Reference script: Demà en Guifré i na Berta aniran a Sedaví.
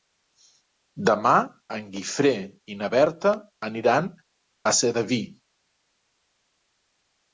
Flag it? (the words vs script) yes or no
no